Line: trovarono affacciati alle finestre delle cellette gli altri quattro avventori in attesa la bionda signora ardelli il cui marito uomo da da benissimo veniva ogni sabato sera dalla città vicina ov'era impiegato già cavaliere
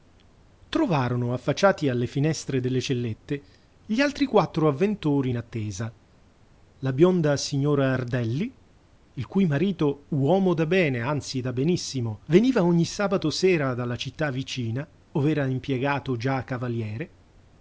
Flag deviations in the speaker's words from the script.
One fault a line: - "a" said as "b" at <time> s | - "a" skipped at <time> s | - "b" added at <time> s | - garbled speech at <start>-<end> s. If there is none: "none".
- "bene anzi" added at 10.7 s